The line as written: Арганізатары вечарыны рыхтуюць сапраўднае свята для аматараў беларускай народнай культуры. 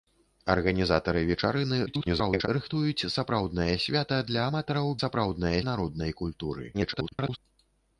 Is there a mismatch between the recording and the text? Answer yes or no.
yes